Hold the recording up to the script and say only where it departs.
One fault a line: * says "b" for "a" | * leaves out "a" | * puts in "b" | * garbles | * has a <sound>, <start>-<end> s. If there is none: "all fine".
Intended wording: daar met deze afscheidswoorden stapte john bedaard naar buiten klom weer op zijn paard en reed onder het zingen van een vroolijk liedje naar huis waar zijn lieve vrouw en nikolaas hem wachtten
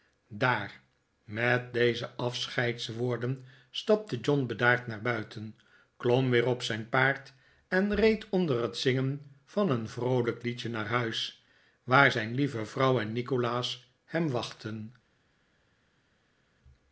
all fine